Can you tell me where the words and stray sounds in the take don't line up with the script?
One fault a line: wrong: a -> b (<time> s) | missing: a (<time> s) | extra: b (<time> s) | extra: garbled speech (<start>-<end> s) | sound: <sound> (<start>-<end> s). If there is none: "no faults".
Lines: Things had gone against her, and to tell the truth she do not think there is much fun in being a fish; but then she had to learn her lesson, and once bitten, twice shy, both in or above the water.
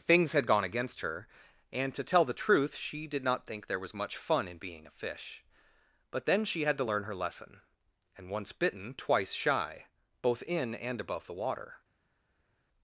wrong: do -> did (3.1 s)
wrong: is -> was (3.8 s)
wrong: or -> and (10.7 s)